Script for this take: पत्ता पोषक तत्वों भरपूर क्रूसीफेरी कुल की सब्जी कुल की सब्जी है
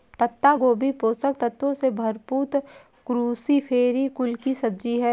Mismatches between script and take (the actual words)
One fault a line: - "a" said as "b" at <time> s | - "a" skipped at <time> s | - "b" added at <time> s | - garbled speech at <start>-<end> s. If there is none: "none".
- "गोभी" added at 0.5 s
- "से" added at 1.7 s
- "कुल की सब्जी" skipped at 5.0 s